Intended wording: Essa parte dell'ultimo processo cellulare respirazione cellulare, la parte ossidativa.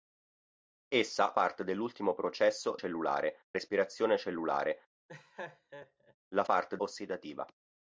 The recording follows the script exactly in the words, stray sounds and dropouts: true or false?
false